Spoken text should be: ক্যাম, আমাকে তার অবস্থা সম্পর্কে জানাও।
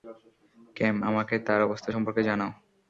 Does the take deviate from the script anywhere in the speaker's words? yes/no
no